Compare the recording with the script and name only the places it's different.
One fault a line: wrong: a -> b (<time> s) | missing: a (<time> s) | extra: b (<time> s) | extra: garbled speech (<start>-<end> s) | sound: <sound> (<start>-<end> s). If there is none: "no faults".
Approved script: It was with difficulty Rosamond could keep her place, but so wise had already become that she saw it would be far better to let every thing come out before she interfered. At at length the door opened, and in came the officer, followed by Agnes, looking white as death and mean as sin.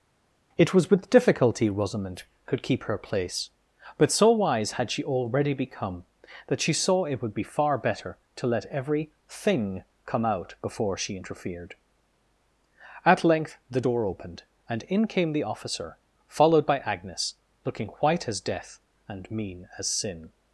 extra: she (4.9 s)
missing: at (13.2 s)